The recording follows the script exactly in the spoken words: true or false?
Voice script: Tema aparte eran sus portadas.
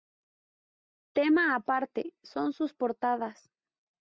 false